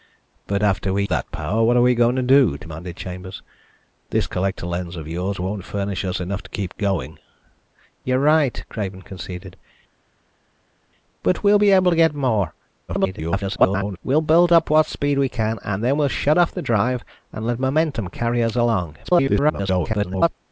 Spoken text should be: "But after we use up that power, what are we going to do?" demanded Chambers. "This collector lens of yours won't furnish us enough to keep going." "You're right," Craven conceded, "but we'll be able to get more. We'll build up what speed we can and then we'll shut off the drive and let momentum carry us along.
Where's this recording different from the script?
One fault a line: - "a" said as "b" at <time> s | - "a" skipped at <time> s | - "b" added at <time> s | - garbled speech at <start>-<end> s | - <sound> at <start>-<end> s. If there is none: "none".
- "use up" skipped at 1.0 s
- garbled speech at 12.9-14.0 s
- garbled speech at 19.0-20.3 s